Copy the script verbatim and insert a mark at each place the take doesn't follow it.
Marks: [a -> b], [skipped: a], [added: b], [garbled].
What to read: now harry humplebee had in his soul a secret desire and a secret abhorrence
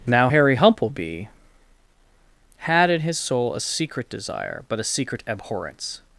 now harry humplebee had in his soul a secret desire [and -> but] a secret abhorrence